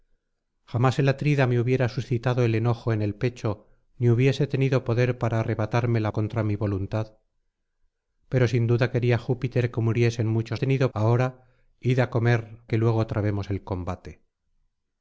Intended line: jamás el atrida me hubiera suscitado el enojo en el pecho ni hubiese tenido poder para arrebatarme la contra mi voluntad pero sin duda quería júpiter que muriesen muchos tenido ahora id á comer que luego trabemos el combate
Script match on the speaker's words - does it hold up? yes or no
yes